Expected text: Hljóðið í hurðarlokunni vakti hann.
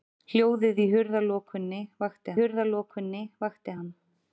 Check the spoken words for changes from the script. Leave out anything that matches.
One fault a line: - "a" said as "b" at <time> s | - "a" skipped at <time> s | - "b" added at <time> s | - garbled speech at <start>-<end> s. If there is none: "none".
- "hurðarlokunni vakti" added at 2.4 s